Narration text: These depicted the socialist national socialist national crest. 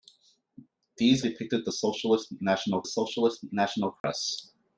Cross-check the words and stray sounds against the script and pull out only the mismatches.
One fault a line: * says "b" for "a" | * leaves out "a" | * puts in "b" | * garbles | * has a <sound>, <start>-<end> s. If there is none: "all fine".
* has a dropout, 4.0-4.0 s